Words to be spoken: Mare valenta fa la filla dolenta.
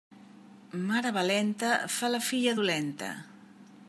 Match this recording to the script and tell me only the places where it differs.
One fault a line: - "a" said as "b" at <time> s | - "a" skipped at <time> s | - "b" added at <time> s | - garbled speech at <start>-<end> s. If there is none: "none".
none